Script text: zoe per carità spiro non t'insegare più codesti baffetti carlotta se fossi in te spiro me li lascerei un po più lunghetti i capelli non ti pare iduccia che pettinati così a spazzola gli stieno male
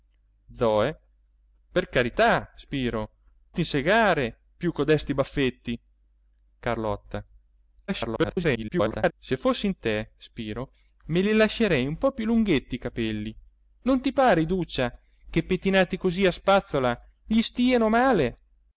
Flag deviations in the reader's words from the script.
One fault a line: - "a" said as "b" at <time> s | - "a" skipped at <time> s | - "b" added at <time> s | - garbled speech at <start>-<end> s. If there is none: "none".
- "non" skipped at 3.1 s
- garbled speech at 7.9-9.1 s